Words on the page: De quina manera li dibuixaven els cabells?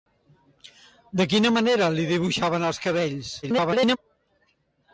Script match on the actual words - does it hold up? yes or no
no